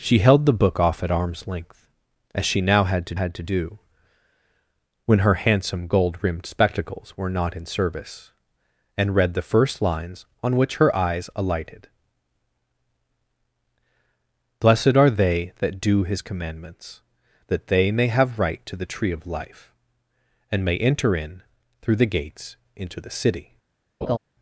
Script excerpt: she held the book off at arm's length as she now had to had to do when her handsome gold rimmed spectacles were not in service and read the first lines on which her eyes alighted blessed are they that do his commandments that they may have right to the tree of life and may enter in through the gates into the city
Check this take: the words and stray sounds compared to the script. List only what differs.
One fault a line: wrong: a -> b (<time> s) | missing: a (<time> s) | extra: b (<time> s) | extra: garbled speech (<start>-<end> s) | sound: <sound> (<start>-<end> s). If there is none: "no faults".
sound: laugh (24.0-24.2 s)